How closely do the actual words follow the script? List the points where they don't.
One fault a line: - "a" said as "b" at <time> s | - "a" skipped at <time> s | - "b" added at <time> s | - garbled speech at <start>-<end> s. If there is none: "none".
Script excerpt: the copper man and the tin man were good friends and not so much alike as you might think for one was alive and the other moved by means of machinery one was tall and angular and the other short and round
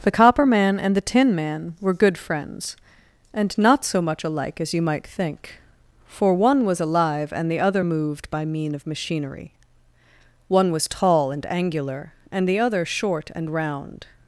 - "means" said as "mean" at 8.4 s